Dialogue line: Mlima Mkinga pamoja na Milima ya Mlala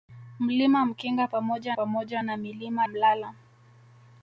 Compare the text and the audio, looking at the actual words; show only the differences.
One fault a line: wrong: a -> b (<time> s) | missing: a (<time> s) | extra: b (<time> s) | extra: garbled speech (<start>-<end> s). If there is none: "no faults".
extra: pamoja (1.7 s)
missing: ya (2.9 s)